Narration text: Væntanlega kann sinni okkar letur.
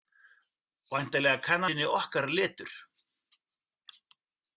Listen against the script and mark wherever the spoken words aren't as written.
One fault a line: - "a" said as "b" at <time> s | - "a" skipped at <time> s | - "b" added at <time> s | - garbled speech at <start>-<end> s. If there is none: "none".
none